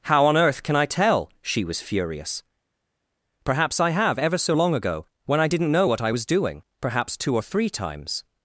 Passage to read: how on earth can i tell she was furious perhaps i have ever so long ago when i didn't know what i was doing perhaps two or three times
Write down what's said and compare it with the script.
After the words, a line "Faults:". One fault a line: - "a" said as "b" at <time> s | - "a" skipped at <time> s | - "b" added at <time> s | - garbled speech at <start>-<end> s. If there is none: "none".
how on earth can i tell she was furious perhaps i have ever so long ago when i didn't know what i was doing perhaps two or three times
Faults:
none